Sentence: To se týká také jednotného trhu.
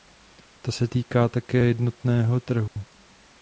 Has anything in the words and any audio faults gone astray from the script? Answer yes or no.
yes